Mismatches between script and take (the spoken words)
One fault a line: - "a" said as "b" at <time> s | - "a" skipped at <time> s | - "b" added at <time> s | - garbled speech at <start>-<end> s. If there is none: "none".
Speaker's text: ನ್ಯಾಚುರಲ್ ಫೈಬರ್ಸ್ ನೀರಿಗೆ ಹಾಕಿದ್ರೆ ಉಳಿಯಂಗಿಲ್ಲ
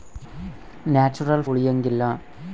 - "ಫೈಬರ್ಸ್ ನೀರಿಗೆ ಹಾಕಿದ್ರೆ" skipped at 1.4 s